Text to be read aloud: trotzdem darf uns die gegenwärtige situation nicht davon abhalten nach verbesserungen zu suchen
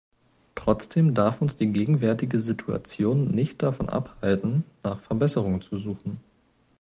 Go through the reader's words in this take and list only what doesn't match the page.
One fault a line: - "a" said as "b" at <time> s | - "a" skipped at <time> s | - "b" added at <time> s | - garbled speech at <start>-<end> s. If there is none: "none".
none